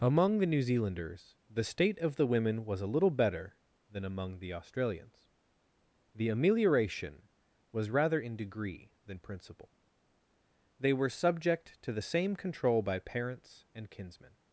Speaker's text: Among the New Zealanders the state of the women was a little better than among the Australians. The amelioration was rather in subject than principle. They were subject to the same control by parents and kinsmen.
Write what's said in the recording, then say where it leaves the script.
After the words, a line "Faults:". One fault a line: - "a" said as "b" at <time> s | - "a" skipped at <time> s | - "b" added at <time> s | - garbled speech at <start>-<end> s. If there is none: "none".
Among the New Zealanders the state of the women was a little better than among the Australians. The amelioration was rather in degree than principle. They were subject to the same control by parents and kinsmen.
Faults:
- "subject" said as "degree" at 8.4 s